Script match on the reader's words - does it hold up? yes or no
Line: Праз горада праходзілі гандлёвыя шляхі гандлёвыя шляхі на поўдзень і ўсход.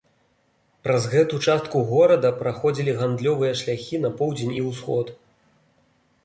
no